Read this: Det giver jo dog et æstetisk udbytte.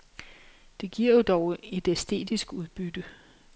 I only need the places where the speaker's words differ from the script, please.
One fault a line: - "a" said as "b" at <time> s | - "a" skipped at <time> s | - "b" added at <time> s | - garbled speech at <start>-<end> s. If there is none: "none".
none